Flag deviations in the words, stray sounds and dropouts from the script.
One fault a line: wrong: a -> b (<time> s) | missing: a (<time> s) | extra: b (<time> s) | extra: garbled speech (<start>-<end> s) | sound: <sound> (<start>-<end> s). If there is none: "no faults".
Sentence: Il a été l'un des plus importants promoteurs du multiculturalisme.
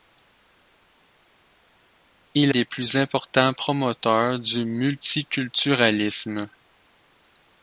missing: a été l'un (2.5 s)